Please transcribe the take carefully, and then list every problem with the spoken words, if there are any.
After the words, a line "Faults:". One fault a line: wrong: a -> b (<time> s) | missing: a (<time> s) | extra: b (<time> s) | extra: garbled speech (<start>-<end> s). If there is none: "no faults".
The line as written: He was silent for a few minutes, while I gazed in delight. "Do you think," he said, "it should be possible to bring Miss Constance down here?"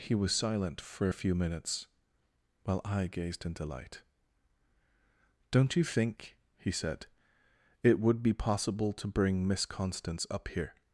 He was silent for a few minutes, while I gazed in delight. "Don't you think," he said, "it would be possible to bring Miss Constance up here?"
Faults:
wrong: Do -> Don't (5.5 s)
wrong: should -> would (8.0 s)
wrong: down -> up (10.3 s)